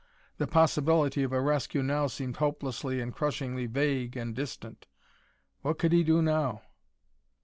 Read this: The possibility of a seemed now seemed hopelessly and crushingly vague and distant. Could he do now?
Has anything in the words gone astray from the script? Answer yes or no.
yes